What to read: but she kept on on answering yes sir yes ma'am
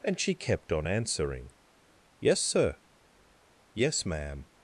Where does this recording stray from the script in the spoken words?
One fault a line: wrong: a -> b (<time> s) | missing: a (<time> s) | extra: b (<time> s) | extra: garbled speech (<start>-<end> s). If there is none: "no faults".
wrong: but -> and (0.0 s)
missing: on (0.9 s)